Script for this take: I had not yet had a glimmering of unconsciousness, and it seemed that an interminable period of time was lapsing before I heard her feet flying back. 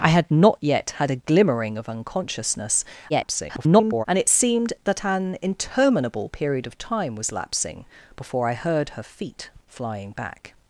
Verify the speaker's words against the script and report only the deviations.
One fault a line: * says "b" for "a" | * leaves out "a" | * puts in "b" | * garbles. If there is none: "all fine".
* garbles